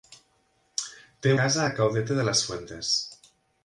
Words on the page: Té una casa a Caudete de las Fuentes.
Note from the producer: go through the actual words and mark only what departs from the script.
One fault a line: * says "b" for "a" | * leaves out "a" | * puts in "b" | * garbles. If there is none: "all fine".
* leaves out "una"